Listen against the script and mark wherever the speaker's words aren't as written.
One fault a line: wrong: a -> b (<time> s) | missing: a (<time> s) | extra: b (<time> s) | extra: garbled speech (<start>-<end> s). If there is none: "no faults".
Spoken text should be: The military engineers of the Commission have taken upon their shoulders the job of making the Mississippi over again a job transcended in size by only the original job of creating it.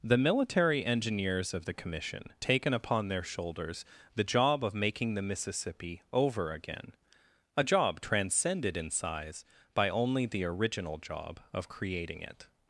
missing: have (2.3 s)